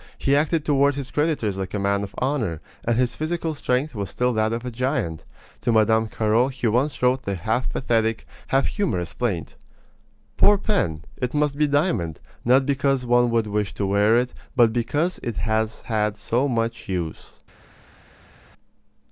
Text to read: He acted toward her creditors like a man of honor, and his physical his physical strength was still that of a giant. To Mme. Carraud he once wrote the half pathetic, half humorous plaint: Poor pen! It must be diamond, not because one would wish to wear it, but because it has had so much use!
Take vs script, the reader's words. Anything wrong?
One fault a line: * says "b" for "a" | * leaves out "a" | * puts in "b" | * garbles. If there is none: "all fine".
* says "his" for "her"
* leaves out "his physical"